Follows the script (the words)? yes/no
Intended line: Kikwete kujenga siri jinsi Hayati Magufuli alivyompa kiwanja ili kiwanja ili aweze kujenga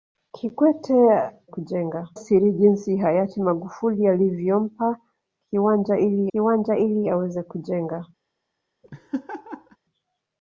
yes